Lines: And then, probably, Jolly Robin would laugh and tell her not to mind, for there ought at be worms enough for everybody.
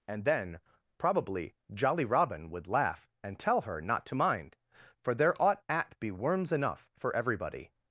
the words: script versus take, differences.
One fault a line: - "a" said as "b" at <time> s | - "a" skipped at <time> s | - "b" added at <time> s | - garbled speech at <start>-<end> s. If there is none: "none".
none